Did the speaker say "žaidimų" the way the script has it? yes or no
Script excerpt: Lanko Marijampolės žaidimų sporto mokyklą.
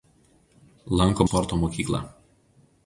no